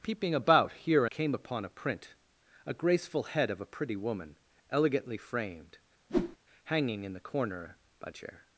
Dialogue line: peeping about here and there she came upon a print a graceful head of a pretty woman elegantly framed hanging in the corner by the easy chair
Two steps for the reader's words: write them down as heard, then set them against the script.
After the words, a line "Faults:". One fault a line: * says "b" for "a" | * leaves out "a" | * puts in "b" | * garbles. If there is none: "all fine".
peeping about here came upon a print a graceful head of a pretty woman elegantly framed hanging in the corner by chair
Faults:
* leaves out "and there she"
* leaves out "the easy"